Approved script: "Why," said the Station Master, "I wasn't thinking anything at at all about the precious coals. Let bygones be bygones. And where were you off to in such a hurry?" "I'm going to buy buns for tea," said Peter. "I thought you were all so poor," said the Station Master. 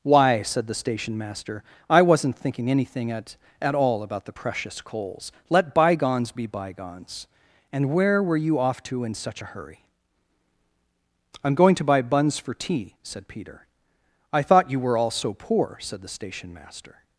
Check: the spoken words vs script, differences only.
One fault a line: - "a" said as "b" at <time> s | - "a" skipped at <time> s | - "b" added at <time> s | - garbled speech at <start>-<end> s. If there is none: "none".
none